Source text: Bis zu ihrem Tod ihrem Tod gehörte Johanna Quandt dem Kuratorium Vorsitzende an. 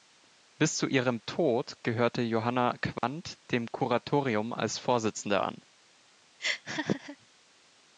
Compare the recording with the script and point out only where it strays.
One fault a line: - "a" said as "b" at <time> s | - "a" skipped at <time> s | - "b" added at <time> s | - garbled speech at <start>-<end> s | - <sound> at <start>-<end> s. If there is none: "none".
- "ihrem Tod" skipped at 1.8 s
- dropout at 3.0-3.0 s
- "als" added at 4.5 s
- laugh at 6.4-7.2 s